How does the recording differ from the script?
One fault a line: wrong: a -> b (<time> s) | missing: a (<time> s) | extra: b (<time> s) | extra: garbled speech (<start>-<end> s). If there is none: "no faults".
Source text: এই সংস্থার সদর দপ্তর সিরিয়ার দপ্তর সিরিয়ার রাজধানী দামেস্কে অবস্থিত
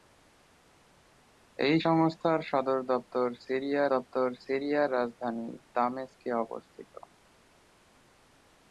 no faults